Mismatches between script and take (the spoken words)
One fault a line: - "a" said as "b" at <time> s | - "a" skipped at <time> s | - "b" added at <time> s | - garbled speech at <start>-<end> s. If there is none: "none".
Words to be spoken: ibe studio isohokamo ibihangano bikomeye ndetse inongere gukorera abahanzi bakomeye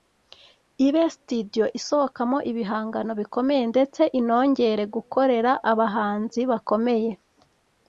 none